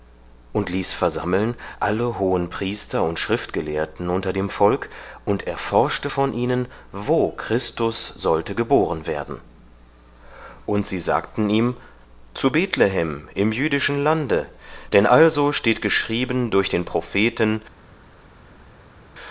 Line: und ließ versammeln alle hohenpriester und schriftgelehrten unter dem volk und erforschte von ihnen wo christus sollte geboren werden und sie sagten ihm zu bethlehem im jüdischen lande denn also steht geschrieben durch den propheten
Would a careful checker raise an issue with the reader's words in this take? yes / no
no